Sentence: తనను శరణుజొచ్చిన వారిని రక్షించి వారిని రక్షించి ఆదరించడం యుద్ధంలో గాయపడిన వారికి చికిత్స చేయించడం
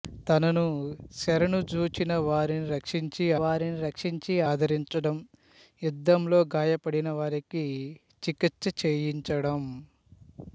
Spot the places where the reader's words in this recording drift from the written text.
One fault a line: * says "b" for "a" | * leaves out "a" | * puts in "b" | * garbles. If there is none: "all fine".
all fine